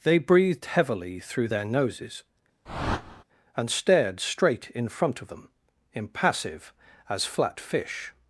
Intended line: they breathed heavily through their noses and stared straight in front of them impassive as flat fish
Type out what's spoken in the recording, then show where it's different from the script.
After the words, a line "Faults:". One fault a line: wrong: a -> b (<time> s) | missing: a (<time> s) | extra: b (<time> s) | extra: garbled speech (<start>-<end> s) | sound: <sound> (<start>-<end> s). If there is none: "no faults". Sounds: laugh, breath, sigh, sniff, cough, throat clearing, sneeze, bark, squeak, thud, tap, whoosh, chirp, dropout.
they breathed heavily through their noses and stared straight in front of them impassive as flat fish
Faults:
sound: whoosh (2.7-3.2 s)